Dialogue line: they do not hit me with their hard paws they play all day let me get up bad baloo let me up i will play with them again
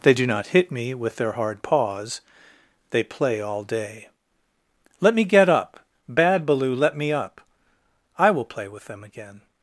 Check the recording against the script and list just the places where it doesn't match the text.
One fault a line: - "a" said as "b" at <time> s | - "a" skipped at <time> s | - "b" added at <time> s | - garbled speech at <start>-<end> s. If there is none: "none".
none